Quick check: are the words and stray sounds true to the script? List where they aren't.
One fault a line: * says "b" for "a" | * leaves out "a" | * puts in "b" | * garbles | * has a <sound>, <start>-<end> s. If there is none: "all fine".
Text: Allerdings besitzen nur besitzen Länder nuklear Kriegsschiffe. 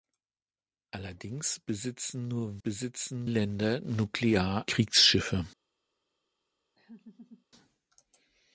* has a laugh, 6.8-7.5 s